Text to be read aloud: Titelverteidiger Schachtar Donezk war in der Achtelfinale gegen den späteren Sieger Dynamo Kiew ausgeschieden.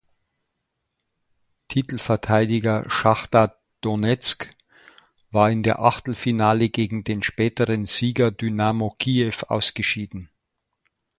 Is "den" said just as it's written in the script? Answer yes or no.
yes